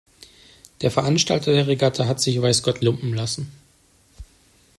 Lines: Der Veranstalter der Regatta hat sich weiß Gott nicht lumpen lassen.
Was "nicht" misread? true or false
true